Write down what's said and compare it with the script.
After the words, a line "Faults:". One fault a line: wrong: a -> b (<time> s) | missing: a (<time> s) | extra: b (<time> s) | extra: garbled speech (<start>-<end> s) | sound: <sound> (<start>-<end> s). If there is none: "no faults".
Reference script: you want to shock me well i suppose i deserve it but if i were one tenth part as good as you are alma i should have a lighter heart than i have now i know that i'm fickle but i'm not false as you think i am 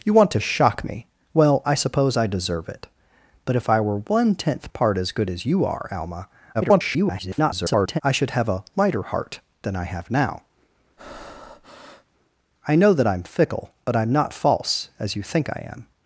you want to shock me well i suppose i deserve it but if i were one tenth part as good as you are alma [garbled] i should have a lighter heart than i have now i know that i'm fickle but i'm not false as you think i am
Faults:
extra: garbled speech (6.5-8.0 s)
sound: breath (11.0-12.1 s)